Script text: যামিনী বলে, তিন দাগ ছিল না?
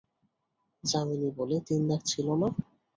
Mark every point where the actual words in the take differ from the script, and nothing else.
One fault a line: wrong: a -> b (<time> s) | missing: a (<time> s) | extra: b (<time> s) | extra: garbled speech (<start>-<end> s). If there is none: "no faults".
no faults